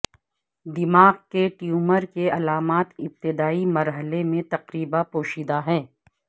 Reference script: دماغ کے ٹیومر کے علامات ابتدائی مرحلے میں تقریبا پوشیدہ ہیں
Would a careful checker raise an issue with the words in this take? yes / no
no